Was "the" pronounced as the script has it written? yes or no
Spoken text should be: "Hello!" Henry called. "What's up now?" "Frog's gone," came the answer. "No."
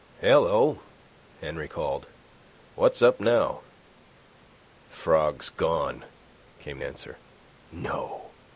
no